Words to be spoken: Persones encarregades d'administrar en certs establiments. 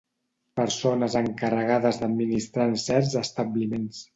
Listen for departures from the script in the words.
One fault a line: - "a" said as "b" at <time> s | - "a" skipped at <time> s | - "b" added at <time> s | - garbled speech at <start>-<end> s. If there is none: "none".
none